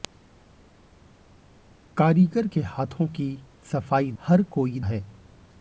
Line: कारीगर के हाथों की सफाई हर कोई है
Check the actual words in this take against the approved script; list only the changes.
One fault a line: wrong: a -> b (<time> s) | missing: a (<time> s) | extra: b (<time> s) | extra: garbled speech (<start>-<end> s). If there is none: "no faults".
no faults